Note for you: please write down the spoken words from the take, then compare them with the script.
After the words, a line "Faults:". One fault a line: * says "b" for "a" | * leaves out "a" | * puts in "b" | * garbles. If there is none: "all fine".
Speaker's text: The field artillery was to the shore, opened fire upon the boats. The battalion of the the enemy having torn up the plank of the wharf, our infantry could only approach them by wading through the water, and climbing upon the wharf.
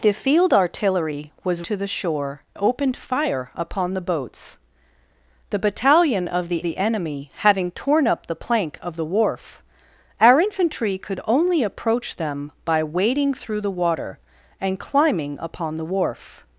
The field artillery was to the shore, opened fire upon the boats. The battalion of the the enemy having torn up the plank of the wharf, our infantry could only approach them by wading through the water, and climbing upon the wharf.
Faults:
all fine